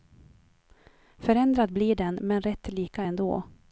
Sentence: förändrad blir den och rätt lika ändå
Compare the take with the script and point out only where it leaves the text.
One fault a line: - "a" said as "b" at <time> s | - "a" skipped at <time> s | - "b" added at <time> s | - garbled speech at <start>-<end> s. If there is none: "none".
- "och" said as "men" at 2.2 s